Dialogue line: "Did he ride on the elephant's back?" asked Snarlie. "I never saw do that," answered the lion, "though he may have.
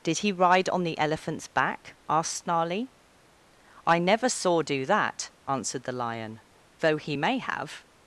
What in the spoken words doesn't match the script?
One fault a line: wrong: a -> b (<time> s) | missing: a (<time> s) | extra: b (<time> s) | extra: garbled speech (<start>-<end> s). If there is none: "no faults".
no faults